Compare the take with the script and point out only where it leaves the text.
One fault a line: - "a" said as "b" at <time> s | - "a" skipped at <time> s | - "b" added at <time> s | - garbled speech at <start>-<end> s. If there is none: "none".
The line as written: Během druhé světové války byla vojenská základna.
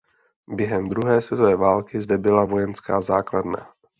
- "zde" added at 2.0 s